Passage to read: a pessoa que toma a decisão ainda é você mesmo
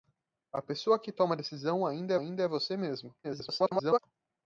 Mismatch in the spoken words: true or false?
true